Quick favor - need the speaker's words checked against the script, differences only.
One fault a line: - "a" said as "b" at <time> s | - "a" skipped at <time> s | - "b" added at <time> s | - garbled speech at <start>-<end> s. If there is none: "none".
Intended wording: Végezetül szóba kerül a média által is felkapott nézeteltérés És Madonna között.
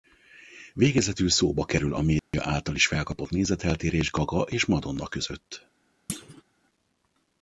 - "Gaga" added at 4.1 s